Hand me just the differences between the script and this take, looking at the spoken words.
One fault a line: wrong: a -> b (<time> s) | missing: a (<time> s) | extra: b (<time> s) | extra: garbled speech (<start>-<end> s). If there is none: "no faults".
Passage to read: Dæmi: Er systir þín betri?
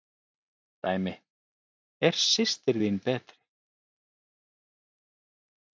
no faults